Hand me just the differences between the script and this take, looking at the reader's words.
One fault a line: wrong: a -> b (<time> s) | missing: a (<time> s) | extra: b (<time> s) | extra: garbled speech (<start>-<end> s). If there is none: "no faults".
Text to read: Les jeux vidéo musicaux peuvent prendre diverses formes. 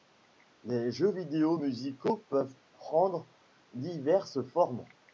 no faults